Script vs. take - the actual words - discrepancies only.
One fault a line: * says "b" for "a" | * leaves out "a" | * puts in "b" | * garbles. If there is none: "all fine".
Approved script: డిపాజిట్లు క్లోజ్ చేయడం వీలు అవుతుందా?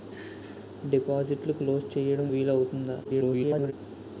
* garbles